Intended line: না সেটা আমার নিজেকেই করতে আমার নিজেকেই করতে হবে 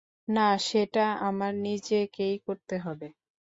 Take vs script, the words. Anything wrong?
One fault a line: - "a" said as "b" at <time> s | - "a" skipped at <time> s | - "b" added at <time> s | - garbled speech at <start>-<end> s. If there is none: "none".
- "আমার নিজেকেই করতে" skipped at 2.7 s